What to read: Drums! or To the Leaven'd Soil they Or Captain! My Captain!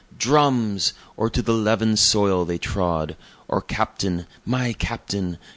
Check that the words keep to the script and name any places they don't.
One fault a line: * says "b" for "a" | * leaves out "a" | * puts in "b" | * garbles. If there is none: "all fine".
* puts in "Trod"